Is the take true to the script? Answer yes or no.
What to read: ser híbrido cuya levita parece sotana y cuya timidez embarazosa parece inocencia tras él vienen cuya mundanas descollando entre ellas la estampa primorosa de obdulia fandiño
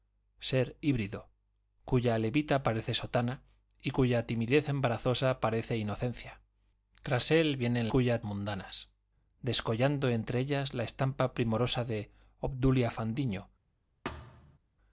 yes